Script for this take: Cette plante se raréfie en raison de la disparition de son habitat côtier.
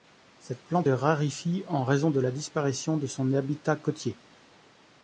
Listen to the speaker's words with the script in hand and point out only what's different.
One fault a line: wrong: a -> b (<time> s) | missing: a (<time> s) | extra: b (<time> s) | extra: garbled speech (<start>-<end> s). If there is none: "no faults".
missing: se (0.9 s)